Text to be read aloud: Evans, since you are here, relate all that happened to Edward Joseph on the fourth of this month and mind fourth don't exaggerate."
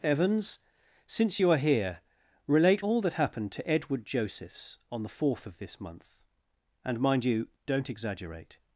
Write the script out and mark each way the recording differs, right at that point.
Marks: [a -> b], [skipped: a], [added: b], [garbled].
Evans, since you are here, relate all that happened to Edward [Joseph -> Josephs] on the fourth of this month and mind [fourth -> you] don't exaggerate."